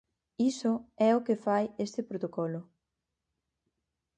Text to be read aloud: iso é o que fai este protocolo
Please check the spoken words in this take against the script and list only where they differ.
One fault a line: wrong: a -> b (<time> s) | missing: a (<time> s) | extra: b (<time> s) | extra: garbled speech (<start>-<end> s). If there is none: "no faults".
no faults